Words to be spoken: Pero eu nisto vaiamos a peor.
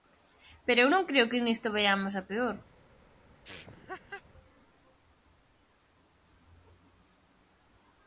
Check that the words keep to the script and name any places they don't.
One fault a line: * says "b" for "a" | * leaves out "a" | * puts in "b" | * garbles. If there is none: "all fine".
* puts in "non creo que"